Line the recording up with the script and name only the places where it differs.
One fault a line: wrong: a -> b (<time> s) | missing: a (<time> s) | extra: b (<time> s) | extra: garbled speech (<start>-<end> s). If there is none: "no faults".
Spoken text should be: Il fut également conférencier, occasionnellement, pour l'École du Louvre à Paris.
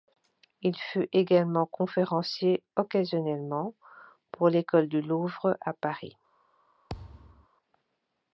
no faults